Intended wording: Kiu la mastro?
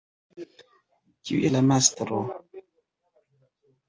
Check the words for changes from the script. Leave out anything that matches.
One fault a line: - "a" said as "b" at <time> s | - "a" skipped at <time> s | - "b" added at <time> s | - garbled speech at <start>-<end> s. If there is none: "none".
none